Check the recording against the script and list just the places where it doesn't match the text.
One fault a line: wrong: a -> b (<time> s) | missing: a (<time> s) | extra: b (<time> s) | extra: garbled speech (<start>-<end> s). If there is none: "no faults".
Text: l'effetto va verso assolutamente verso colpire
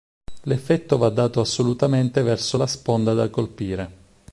wrong: verso -> dato (1.1 s)
extra: la sponda da (2.5 s)